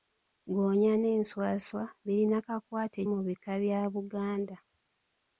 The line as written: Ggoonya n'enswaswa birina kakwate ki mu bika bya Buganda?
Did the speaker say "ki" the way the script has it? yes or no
no